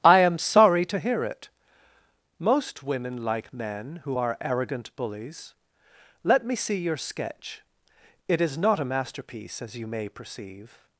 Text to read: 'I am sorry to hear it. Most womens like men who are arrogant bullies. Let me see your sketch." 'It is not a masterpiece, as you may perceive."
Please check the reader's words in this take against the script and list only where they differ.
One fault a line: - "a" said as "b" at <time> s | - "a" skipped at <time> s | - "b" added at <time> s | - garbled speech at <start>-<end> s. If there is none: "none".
- "womens" said as "women" at 2.8 s